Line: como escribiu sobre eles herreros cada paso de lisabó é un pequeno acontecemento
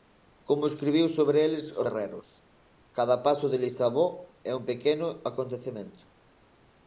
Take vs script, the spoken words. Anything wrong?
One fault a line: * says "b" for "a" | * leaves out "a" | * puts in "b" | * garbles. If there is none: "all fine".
all fine